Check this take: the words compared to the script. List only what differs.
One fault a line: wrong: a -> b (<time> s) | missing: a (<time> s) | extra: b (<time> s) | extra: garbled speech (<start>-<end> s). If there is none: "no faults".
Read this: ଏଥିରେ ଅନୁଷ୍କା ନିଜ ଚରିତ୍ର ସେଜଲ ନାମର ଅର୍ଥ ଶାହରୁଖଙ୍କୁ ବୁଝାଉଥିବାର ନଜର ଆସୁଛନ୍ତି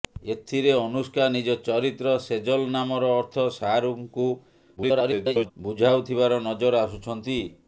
extra: garbled speech (4.8-5.5 s)